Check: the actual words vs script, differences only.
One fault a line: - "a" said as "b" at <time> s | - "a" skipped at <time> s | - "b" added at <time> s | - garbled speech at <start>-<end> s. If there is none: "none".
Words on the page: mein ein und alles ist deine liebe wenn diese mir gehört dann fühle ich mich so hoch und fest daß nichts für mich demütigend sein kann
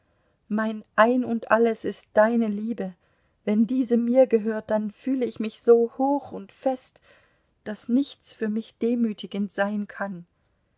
none